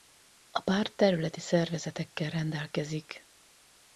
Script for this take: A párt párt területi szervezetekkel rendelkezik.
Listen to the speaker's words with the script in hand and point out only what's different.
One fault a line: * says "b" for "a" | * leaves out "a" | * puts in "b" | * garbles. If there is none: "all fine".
* leaves out "párt"